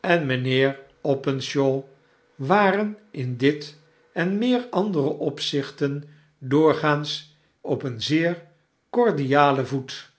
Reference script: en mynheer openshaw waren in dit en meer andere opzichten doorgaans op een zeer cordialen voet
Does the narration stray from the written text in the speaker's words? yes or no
no